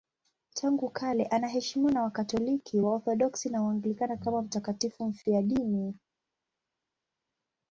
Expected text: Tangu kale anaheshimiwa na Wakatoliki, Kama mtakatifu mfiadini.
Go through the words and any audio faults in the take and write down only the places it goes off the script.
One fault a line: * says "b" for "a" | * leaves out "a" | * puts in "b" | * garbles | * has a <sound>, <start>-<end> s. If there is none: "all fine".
* puts in "Waorthodoksi na Waanglikana"